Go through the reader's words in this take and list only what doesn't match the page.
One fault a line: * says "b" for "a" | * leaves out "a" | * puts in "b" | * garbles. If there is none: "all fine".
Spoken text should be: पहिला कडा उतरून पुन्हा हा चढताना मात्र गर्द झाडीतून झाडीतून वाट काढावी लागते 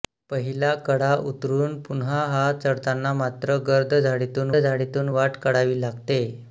all fine